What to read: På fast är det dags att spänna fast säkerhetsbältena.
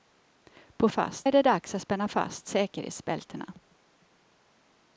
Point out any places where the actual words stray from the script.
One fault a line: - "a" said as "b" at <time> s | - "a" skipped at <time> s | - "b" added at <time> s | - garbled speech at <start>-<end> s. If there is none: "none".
none